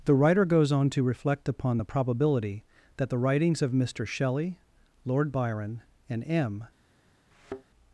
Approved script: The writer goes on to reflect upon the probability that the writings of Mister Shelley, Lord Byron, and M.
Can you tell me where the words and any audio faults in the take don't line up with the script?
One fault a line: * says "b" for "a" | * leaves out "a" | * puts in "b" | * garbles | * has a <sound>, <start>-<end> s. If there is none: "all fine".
* has a thud, 7.3-7.6 s